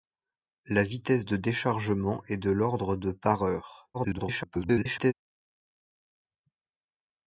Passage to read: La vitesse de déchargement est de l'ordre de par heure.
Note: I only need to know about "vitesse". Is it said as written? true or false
true